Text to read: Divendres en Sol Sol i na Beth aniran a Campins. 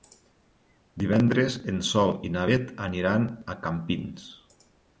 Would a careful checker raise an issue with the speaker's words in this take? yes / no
yes